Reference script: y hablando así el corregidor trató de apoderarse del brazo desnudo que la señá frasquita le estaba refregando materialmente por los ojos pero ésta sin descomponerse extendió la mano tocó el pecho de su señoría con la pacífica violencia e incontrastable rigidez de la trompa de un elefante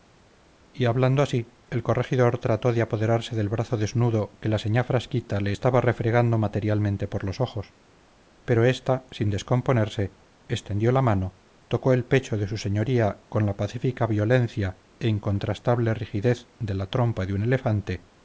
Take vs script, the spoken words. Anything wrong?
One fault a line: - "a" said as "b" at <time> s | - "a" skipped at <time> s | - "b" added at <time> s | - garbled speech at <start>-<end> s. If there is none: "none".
none